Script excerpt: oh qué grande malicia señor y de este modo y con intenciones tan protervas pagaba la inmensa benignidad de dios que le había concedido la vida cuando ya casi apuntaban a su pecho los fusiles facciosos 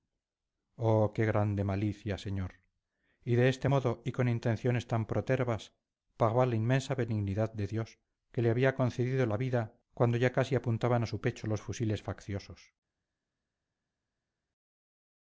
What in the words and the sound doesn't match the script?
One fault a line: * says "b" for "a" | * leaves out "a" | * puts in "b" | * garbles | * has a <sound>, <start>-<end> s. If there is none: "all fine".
all fine